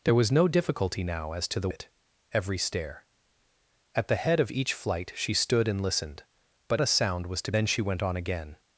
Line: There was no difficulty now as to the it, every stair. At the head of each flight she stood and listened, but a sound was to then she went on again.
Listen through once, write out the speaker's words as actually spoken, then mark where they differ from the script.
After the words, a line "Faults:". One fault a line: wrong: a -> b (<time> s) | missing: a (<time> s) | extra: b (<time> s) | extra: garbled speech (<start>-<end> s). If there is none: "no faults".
There was no difficulty now as to the it, every stair. At the head of each flight she stood and listened, but a sound was to then she went on again.
Faults:
no faults